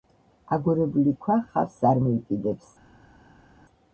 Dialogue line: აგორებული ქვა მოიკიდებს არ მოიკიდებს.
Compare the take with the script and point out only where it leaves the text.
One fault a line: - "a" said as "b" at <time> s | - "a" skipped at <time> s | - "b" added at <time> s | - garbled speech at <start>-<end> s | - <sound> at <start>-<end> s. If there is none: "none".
- "მოიკიდებს" said as "ხავსს" at 1.5 s